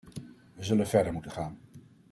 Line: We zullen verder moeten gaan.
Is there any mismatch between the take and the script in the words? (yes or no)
no